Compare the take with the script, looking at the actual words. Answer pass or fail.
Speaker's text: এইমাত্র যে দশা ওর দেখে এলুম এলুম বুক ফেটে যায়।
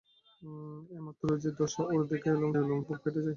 pass